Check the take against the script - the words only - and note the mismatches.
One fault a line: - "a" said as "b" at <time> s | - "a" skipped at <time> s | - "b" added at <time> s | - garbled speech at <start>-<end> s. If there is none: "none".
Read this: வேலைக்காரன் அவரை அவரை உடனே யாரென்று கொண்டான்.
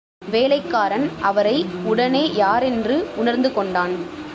- "அவரை" skipped at 1.6 s
- "உணர்ந்து" added at 3.1 s